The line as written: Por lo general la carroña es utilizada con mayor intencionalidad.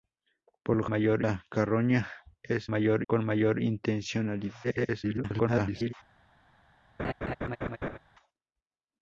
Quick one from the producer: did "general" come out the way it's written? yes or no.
no